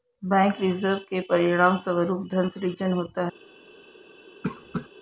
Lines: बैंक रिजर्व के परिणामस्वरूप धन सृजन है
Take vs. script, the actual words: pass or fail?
fail